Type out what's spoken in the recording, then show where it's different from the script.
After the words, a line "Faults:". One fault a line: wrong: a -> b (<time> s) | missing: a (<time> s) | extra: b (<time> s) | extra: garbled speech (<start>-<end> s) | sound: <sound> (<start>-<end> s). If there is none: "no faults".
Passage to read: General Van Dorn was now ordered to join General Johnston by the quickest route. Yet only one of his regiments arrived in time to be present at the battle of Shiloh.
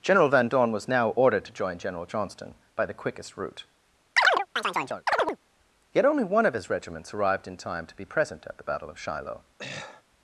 General Van Dorn was now ordered to join General Johnston by the quickest route. Yet only one of his regiments arrived in time to be present at the battle of Shiloh.
Faults:
sound: chirp (4.2-5.4 s)
sound: throat clearing (9.6-10.0 s)